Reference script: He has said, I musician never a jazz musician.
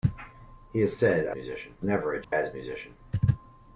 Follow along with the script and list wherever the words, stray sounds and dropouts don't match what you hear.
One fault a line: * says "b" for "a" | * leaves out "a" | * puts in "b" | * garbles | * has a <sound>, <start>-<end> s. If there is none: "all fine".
* has a dropout, 2.2-2.3 s